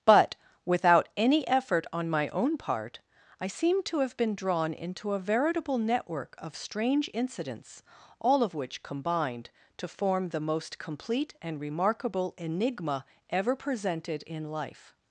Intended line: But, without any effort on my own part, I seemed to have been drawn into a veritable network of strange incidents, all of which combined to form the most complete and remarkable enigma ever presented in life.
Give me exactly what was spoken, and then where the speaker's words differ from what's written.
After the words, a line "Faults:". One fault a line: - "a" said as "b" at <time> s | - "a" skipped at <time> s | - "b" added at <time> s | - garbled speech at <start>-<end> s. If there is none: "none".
But, without any effort on my own part, I seem to have been drawn into a veritable network of strange incidents, all of which combined to form the most complete and remarkable enigma ever presented in life.
Faults:
- "seemed" said as "seem" at 3.5 s